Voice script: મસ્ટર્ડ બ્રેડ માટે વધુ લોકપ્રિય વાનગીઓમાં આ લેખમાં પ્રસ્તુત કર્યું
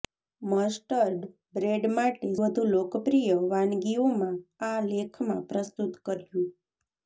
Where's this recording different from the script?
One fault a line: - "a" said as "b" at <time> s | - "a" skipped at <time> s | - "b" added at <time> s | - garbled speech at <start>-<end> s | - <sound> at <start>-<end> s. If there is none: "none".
none